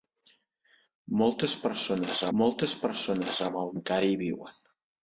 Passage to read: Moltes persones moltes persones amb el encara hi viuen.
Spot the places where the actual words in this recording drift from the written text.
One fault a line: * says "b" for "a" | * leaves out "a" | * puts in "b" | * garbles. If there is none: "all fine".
all fine